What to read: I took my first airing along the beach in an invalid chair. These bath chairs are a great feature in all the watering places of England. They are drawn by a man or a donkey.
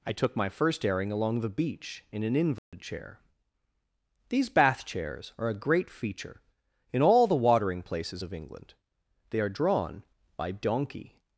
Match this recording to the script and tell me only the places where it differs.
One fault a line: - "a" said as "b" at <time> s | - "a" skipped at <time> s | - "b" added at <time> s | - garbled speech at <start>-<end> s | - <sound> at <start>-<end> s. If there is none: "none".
- dropout at 2.6-2.7 s
- "a man or a" skipped at 10.5 s